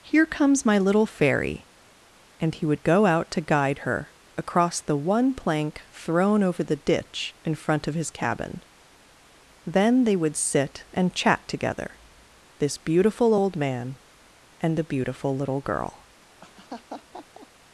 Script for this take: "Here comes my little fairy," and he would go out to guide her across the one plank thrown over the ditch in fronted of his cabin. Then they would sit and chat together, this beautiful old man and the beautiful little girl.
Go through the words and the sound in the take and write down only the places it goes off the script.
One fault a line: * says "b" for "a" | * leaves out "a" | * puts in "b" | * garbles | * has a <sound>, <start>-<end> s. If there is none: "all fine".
* says "front" for "fronted"
* has a laugh, 16.4-17.5 s